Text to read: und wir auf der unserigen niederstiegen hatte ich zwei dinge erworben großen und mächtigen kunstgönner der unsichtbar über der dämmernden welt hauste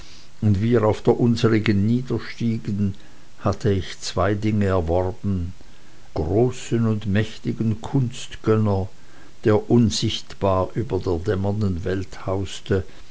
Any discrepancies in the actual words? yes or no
no